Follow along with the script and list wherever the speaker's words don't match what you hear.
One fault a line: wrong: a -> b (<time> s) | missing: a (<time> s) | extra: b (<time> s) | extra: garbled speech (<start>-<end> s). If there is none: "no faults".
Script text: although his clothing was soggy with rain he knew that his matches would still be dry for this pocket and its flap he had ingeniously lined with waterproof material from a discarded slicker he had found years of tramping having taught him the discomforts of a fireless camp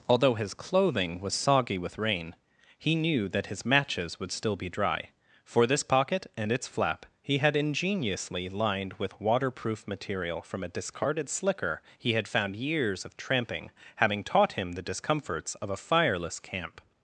no faults